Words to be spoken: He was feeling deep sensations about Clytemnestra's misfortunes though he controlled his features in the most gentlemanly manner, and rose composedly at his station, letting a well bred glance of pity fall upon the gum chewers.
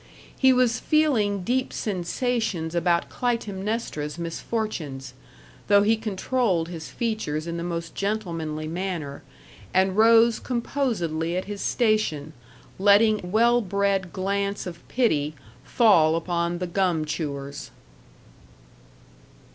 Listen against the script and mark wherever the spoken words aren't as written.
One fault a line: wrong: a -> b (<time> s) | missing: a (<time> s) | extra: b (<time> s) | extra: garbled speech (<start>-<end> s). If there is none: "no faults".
missing: a (13.2 s)